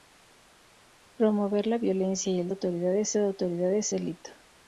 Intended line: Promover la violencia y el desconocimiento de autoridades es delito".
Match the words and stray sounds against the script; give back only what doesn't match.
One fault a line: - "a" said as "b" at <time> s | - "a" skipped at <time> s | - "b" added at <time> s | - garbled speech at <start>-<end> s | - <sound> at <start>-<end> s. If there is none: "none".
- "desconocimiento" said as "autoridades" at 2.5 s
- "es" skipped at 3.9 s